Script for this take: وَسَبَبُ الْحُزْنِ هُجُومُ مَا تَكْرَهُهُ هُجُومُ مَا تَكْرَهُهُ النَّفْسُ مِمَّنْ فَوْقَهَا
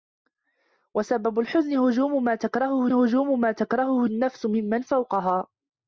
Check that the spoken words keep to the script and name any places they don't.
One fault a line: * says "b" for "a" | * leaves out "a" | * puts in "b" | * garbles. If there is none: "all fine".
all fine